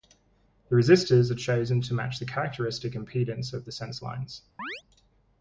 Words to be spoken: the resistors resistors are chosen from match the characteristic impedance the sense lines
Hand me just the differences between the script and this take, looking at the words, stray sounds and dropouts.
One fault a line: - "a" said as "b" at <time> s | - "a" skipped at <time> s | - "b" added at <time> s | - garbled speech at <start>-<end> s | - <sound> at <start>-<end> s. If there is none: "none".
- "resistors" skipped at 1.3 s
- "from" said as "to" at 1.8 s
- "of" added at 3.5 s
- chirp at 4.6-4.8 s